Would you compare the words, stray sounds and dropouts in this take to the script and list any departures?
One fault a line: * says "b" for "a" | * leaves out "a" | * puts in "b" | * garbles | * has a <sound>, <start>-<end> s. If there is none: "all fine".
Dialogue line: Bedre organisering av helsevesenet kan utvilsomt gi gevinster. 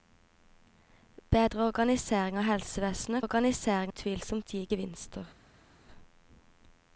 * says "organisering" for "kan"